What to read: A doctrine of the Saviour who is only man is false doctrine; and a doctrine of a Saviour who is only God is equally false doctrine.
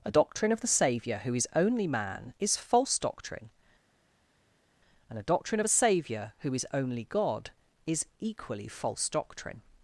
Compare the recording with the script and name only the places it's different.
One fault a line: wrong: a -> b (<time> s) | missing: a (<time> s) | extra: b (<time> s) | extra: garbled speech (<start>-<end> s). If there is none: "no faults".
no faults